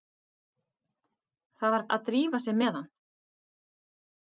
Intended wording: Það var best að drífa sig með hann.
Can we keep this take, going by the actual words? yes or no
no